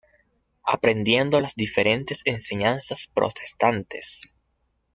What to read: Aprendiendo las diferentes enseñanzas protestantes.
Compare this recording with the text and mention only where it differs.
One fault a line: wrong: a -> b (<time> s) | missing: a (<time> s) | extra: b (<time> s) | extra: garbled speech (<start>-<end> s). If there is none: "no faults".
no faults